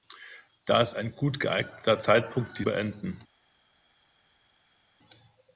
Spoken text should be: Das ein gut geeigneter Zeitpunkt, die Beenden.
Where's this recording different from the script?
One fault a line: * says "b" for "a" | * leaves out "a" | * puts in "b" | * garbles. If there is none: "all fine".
all fine